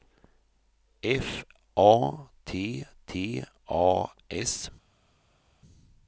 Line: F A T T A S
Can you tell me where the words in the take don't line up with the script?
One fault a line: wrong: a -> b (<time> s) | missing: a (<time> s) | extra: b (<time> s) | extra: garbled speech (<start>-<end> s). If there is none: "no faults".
no faults